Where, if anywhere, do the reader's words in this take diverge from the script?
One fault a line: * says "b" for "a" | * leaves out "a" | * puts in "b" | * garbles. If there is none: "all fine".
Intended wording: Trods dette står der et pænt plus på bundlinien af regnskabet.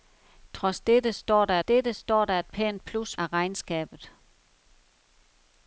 * puts in "dette står der"
* leaves out "på bundlinien"